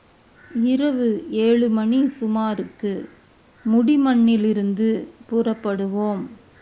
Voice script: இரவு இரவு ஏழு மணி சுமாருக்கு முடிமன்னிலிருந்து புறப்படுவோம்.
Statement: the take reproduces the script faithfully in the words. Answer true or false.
false